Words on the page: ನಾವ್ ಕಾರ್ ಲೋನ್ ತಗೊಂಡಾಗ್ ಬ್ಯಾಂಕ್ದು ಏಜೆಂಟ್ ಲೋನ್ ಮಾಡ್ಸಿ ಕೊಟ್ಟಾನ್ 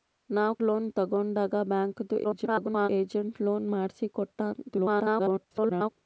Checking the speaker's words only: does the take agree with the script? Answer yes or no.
no